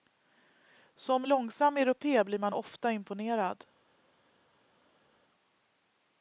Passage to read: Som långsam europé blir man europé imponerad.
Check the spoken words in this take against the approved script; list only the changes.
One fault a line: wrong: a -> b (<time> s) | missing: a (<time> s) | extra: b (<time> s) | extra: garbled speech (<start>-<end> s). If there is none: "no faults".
wrong: europé -> ofta (2.5 s)